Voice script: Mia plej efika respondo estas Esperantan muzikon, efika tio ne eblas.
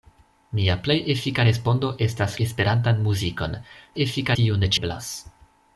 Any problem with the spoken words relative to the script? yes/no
no